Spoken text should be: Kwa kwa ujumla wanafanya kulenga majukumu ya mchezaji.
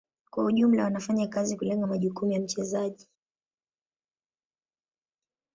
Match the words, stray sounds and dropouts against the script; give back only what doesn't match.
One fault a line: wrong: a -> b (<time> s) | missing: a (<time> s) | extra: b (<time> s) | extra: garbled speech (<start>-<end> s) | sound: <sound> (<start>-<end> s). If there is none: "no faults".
missing: kwa (0.5 s)
extra: kazi (1.3 s)